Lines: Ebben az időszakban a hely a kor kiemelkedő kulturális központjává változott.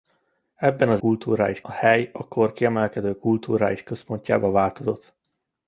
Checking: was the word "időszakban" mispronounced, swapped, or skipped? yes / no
yes